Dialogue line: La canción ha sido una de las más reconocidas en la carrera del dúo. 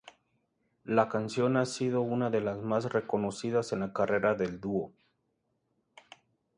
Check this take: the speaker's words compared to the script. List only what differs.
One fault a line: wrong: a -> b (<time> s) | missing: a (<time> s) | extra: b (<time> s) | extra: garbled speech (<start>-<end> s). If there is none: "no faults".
no faults